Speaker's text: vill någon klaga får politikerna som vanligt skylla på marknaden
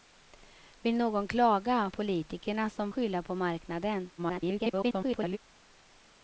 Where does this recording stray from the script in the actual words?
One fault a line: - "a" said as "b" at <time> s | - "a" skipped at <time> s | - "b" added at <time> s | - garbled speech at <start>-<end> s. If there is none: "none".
- "får" skipped at 1.9 s
- "vanligt" skipped at 2.9 s
- garbled speech at 4.2-5.4 s